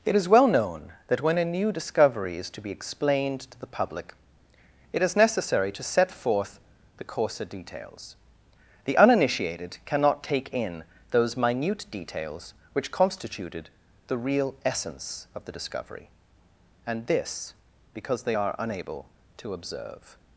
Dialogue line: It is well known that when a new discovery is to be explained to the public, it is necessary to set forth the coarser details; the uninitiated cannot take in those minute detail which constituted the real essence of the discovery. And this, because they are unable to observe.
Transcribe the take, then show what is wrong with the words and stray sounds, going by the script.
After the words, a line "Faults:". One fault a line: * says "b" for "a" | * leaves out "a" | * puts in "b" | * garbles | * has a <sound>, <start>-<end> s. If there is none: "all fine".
It is well known that when a new discovery is to be explained to the public, it is necessary to set forth the coarser details; the uninitiated cannot take in those minute details which constituted the real essence of the discovery. And this, because they are unable to observe.
Faults:
* says "details" for "detail"